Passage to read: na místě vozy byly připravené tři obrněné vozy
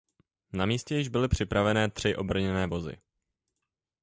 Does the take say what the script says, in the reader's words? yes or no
no